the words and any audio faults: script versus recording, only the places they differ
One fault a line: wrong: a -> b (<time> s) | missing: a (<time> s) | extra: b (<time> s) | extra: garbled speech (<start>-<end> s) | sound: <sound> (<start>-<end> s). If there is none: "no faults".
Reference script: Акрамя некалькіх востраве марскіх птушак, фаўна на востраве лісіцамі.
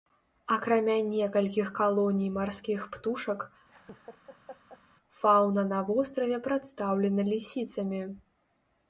wrong: востраве -> калоній (1.8 s)
sound: laugh (3.7-4.8 s)
extra: прадстаўлена (6.5 s)